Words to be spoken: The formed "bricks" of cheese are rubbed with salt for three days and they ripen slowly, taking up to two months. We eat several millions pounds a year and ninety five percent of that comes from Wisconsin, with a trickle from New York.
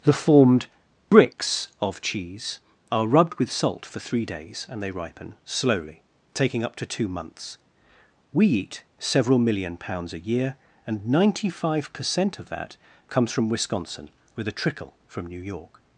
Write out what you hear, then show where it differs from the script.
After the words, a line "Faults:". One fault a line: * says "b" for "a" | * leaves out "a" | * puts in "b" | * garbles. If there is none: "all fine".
The formed "bricks" of cheese are rubbed with salt for three days and they ripen slowly, taking up to two months. We eat several million pounds a year and ninety five percent of that comes from Wisconsin, with a trickle from New York.
Faults:
* says "million" for "millions"